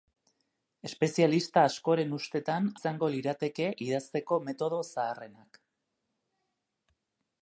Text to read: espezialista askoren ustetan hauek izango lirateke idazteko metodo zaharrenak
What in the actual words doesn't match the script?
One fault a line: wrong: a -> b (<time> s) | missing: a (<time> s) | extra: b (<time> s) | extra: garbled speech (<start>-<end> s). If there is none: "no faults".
missing: hauek (2.7 s)